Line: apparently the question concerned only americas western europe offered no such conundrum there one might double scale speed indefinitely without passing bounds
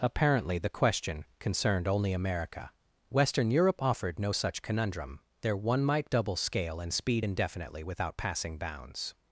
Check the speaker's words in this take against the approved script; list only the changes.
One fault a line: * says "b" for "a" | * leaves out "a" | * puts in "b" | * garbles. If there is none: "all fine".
* says "america" for "americas"
* puts in "and"